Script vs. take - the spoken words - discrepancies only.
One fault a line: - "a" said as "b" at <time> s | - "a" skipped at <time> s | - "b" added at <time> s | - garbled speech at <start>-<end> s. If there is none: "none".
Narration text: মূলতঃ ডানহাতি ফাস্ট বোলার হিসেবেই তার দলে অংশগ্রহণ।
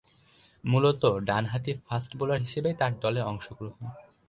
none